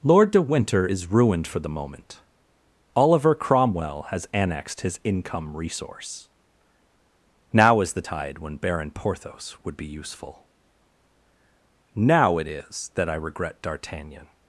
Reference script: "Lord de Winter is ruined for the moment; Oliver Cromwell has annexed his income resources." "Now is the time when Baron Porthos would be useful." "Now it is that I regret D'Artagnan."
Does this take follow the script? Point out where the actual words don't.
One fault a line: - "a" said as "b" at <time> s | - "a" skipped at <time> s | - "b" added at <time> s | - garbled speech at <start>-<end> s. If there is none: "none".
- "resources" said as "resource" at 5.6 s
- "time" said as "tide" at 8.0 s